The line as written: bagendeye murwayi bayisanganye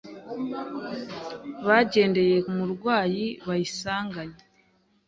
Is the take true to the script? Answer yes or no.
yes